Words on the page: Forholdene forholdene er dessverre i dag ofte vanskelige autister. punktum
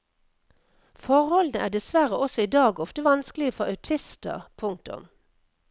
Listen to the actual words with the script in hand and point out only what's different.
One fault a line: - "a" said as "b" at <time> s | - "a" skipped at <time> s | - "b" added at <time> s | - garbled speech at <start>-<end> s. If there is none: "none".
- "forholdene" skipped at 1.6 s
- "også" added at 2.3 s
- "for" added at 3.5 s